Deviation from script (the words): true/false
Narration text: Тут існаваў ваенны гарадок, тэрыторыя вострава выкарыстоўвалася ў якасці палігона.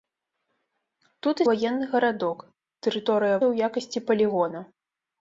true